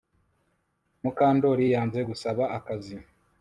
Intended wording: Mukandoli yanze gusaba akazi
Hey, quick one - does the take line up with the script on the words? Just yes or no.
yes